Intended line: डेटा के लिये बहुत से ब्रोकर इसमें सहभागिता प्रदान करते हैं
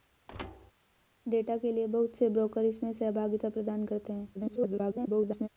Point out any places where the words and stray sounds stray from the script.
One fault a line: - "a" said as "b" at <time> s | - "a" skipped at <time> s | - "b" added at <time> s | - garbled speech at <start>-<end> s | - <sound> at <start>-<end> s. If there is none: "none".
- thud at 0.3-0.7 s
- garbled speech at 4.3-5.5 s